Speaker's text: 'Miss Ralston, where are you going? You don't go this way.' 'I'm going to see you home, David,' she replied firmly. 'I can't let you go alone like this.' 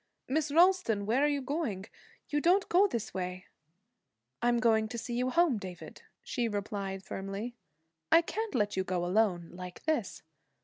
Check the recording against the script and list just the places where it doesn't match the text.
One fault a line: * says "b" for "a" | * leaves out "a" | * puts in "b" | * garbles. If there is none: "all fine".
all fine